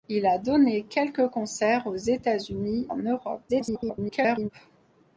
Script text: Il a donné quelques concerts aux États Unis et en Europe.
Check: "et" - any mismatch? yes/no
yes